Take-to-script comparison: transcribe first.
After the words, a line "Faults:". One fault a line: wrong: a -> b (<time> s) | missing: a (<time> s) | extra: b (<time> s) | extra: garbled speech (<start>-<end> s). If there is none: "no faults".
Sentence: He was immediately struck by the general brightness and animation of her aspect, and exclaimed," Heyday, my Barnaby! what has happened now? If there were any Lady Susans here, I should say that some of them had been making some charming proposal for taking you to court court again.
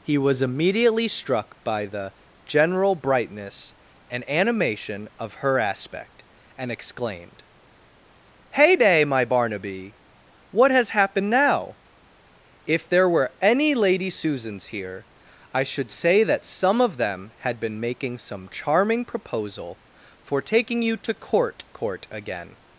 He was immediately struck by the general brightness and animation of her aspect, and exclaimed," Heyday, my Barnaby! what has happened now? If there were any Lady Susans here, I should say that some of them had been making some charming proposal for taking you to court court again.
Faults:
no faults